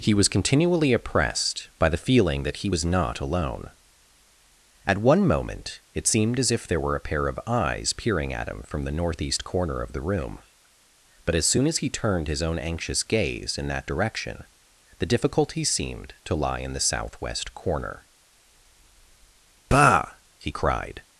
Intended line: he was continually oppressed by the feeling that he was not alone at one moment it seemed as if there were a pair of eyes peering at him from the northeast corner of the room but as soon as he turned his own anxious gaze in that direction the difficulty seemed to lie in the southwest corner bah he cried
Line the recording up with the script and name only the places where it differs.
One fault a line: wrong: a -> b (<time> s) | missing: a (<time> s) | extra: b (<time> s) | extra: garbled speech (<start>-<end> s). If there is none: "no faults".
no faults